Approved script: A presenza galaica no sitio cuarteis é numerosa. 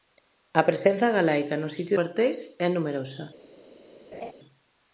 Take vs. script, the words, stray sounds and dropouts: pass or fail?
fail